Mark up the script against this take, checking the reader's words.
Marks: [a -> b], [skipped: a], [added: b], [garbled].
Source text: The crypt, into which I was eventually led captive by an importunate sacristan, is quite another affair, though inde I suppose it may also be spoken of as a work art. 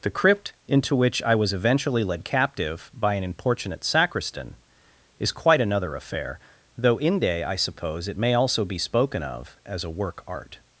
The crypt, into which I was eventually led captive by an importunate sacristan, is quite another affair, though inde I suppose it may also be spoken of as a work art.